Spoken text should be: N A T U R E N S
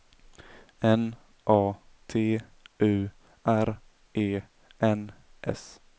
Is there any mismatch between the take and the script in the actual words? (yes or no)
no